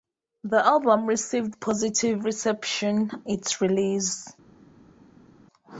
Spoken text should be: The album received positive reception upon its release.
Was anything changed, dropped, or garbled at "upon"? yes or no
yes